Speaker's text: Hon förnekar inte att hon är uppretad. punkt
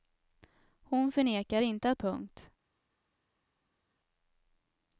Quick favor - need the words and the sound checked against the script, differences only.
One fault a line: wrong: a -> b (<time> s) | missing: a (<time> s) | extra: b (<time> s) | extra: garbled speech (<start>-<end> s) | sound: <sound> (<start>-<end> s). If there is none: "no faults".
missing: hon är uppretad (2.0 s)